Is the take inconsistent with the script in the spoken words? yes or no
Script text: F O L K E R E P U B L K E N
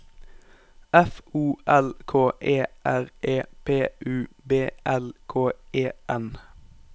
no